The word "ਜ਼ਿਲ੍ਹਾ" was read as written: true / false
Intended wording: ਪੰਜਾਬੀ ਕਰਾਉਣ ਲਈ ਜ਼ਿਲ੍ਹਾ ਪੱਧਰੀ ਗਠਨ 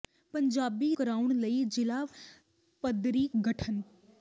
true